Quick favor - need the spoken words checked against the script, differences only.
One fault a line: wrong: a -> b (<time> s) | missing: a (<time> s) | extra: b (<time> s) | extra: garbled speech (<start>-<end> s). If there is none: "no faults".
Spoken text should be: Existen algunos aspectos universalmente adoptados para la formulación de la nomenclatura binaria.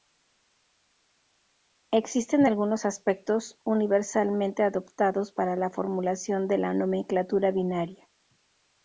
no faults